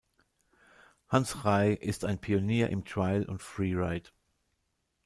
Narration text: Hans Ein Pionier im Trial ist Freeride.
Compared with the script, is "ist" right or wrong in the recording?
wrong